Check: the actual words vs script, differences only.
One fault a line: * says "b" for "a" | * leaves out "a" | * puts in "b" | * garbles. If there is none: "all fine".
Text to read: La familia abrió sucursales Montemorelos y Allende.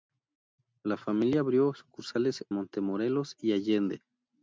all fine